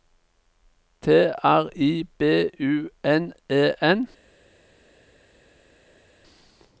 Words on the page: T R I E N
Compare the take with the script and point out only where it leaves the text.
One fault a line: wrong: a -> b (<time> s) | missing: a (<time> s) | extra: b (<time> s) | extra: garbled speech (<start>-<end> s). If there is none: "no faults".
extra: B U N (2.2 s)